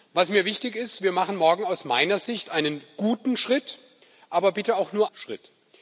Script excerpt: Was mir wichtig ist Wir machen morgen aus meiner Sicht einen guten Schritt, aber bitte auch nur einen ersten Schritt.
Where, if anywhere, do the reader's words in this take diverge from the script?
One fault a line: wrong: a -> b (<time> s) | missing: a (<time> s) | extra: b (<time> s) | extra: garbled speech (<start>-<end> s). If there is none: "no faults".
missing: einen ersten (5.1 s)